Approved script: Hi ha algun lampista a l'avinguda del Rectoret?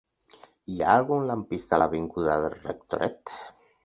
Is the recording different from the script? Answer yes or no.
no